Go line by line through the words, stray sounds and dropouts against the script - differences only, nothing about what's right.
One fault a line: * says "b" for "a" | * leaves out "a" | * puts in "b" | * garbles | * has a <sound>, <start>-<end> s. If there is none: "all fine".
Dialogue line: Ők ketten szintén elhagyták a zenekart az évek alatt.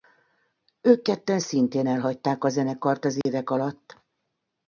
* has a dropout, 3.2-3.3 s